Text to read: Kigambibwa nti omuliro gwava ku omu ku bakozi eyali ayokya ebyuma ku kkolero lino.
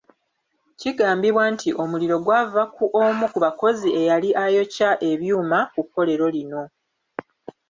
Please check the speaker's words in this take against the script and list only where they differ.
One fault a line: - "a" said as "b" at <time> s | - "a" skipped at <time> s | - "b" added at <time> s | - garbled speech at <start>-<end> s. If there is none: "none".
none